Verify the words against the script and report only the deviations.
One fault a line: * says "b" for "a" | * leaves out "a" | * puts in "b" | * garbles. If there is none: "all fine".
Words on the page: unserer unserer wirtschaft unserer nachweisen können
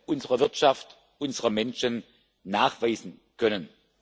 * leaves out "unserer"
* puts in "menschen"